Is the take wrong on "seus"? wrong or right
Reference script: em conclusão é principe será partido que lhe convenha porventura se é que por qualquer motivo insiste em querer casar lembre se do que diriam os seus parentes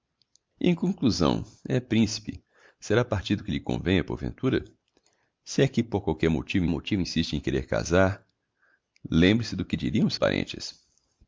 wrong